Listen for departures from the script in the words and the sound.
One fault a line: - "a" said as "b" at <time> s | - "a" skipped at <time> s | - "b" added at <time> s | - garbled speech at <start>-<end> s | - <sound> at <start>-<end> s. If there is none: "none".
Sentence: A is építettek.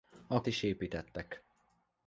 none